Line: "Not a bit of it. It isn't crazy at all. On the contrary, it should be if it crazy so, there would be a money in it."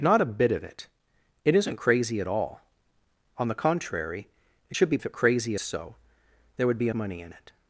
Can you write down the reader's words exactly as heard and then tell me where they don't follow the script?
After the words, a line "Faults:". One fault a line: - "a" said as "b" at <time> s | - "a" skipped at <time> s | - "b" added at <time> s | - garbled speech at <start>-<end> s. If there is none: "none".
"Not a bit of it. It isn't crazy at all. On the contrary, it should be if it crazy so, there would be a money in it."
Faults:
none